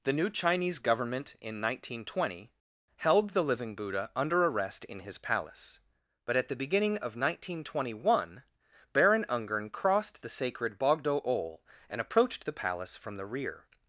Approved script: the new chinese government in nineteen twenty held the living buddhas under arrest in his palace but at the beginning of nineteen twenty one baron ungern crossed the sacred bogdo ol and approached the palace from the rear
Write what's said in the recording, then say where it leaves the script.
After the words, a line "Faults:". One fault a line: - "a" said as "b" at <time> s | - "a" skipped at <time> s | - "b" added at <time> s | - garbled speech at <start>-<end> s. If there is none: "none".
the new chinese government in nineteen twenty held the living buddha under arrest in his palace but at the beginning of nineteen twenty one baron ungern crossed the sacred bogdo ol and approached the palace from the rear
Faults:
- "buddhas" said as "buddha" at 3.8 s